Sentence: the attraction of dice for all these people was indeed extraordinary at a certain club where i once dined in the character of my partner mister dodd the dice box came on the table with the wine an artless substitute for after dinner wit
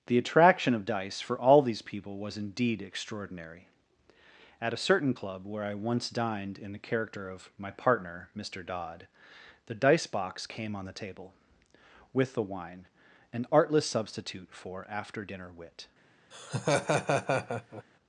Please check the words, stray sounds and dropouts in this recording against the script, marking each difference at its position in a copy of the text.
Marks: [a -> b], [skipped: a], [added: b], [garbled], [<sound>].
the attraction of dice for all these people was indeed extraordinary at a certain club where i once dined in the character of my partner mister dodd the dice box came on the table with the wine an artless substitute for after dinner wit [laugh]